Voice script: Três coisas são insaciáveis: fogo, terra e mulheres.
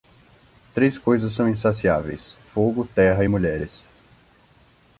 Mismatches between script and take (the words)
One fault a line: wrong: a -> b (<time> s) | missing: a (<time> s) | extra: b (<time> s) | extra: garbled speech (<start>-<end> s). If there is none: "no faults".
no faults